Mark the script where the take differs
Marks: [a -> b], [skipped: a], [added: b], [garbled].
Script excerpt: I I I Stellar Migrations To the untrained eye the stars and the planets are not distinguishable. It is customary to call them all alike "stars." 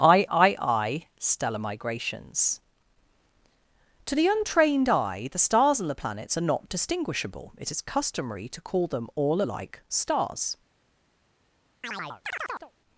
I I I Stellar Migrations To the untrained eye the stars and the planets are not distinguishable. It is customary to call them all alike "stars."